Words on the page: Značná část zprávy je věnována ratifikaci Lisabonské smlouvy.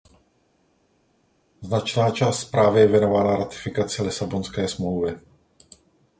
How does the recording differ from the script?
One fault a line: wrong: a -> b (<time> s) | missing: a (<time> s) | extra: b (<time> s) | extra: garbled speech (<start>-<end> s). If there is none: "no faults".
no faults